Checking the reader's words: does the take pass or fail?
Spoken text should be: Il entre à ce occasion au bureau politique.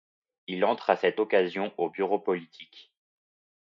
fail